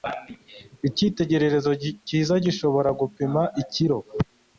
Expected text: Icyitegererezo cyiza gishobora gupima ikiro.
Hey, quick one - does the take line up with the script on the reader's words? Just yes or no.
yes